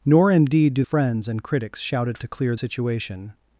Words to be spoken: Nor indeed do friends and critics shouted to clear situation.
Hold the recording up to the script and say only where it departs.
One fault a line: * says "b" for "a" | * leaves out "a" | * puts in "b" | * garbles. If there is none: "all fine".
all fine